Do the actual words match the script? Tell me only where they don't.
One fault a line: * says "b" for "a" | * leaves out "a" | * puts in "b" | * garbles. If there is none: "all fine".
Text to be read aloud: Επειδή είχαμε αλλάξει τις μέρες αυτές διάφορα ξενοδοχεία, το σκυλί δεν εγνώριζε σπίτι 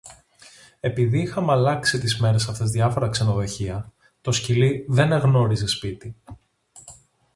all fine